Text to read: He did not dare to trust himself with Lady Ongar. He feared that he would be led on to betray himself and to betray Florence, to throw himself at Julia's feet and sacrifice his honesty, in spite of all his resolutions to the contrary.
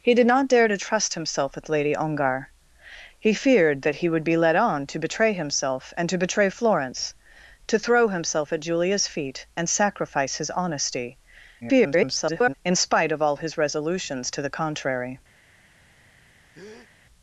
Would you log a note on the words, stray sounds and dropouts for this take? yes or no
yes